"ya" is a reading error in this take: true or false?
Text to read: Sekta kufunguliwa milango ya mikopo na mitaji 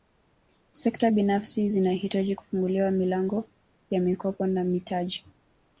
false